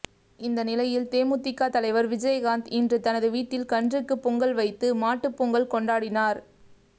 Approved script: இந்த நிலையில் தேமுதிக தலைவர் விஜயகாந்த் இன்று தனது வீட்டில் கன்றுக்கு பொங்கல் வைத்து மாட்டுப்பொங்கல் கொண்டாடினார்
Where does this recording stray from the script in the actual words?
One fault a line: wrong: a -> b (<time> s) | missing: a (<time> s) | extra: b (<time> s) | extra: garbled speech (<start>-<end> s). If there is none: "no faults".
no faults